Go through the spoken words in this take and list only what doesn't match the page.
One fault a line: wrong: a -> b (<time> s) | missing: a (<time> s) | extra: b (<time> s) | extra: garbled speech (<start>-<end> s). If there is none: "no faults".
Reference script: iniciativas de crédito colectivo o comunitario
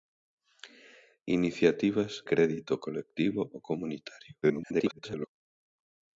missing: de (2.2 s)
extra: garbled speech (4.4-5.3 s)